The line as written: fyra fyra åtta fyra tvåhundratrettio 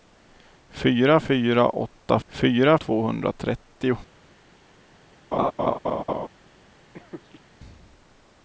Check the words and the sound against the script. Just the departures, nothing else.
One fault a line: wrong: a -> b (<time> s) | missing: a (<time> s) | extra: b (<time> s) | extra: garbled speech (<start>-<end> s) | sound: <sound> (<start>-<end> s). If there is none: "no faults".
sound: laugh (5.3-6.3 s)
sound: laugh (6.9-7.4 s)